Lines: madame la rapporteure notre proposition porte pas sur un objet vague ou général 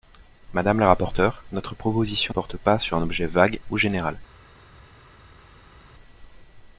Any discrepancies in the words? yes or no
no